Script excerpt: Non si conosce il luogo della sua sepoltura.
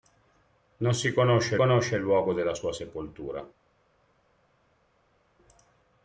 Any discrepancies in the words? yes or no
yes